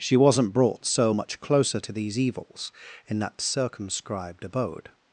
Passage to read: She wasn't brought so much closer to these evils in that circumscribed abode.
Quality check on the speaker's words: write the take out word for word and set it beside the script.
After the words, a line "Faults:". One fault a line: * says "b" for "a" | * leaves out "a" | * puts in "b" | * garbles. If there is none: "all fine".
She wasn't brought so much closer to these evils in that circumscribed abode.
Faults:
all fine